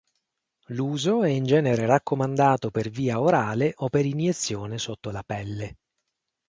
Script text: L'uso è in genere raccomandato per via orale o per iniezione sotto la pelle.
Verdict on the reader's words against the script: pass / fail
pass